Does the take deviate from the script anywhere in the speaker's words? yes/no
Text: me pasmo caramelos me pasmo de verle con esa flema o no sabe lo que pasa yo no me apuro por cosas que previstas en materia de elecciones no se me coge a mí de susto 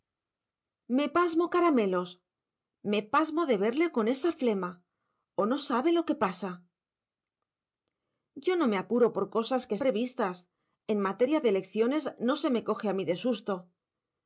no